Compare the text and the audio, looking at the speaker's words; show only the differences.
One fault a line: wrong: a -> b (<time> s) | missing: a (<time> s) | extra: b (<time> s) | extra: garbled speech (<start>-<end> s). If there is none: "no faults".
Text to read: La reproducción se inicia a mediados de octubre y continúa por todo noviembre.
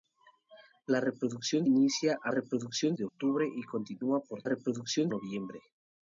missing: se (1.7 s)
wrong: mediados -> reproducción (2.3 s)
wrong: todo -> reproducción (4.4 s)